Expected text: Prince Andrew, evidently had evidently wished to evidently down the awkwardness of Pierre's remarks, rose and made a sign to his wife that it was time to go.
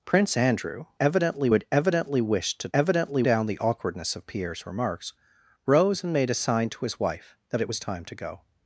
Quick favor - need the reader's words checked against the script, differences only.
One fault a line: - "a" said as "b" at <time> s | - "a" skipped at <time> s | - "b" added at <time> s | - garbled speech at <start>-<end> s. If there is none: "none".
none